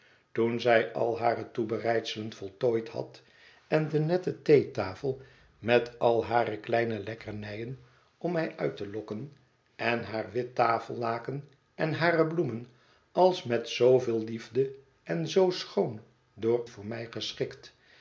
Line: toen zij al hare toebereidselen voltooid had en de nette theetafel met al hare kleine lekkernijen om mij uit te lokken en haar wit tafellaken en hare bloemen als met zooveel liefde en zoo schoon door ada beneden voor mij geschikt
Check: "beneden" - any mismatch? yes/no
yes